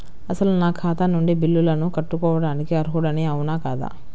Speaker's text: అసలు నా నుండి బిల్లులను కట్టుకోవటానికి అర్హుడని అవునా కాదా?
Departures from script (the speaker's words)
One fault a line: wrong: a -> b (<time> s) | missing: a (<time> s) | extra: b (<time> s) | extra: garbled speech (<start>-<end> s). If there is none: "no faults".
extra: ఖాతా (0.7 s)